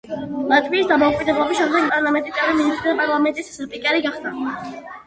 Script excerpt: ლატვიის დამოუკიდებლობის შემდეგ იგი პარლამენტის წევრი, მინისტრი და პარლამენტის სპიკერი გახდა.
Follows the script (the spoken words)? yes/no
no